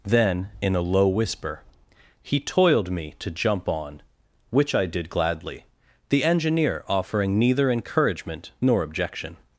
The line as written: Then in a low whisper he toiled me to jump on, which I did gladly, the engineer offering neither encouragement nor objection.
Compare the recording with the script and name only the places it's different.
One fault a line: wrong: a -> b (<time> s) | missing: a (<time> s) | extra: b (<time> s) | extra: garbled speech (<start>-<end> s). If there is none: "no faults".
no faults